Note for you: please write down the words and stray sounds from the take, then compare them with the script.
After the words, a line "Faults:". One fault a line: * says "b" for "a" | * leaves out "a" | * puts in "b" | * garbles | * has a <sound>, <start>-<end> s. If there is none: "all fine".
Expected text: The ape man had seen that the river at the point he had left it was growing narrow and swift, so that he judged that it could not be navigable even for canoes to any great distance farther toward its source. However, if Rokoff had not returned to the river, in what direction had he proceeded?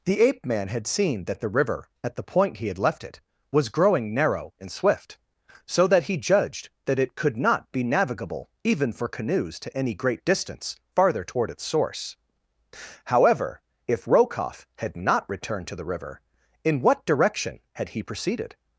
The ape man had seen that the river at the point he had left it was growing narrow and swift, so that he judged that it could not be navigable even for canoes to any great distance farther toward its source. However, if Rokoff had not returned to the river, in what direction had he proceeded?
Faults:
all fine